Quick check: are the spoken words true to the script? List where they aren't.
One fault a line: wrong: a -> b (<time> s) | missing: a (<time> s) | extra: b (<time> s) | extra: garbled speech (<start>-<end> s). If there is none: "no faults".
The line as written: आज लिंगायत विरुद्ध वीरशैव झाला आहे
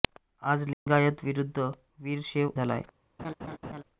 no faults